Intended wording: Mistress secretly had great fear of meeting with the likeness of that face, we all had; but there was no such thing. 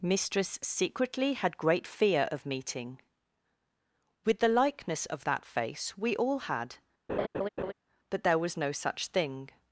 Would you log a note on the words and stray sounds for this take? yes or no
yes